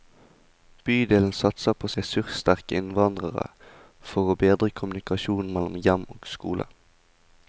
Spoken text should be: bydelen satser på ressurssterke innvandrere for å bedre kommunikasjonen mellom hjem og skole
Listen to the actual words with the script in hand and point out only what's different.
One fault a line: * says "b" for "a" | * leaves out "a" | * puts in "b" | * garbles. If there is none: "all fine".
all fine